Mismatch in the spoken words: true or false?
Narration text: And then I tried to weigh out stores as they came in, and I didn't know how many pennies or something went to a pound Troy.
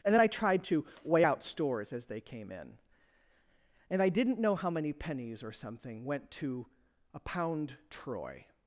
false